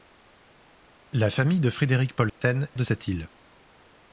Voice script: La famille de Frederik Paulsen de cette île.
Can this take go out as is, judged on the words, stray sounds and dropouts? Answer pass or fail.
fail